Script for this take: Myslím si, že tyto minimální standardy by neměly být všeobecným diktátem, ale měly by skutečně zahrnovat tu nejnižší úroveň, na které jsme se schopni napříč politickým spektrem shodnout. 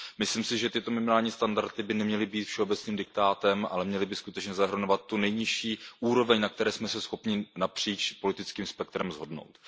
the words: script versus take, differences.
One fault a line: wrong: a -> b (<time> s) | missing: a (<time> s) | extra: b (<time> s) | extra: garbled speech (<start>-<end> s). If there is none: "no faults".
no faults